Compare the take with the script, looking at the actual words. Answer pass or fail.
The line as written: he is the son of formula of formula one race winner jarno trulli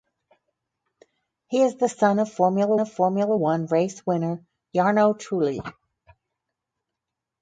pass